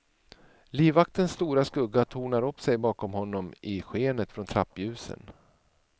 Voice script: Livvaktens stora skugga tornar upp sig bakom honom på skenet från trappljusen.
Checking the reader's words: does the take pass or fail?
fail